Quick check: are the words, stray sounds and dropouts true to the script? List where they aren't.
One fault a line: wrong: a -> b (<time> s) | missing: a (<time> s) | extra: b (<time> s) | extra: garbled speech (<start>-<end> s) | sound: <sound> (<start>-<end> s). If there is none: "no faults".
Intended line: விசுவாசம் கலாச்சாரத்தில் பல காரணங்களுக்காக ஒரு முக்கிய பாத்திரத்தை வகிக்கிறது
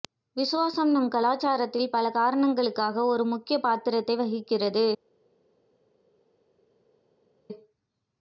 extra: நம் (0.9 s)